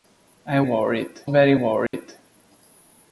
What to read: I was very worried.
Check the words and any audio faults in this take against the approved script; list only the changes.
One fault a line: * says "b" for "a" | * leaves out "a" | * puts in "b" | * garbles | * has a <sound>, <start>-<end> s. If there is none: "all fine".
* says "worried" for "was"
* has a dropout, 1.9-1.9 s